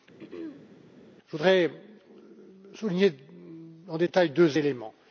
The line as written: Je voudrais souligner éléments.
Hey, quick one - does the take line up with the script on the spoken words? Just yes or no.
no